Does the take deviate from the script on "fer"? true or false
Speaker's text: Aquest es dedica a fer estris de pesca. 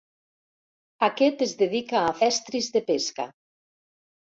true